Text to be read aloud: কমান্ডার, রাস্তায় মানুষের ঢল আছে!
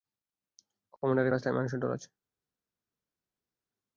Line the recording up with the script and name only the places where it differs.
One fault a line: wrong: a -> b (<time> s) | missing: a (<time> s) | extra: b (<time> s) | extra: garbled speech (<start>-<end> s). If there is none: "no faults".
no faults